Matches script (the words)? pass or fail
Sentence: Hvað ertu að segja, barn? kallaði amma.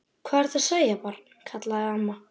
pass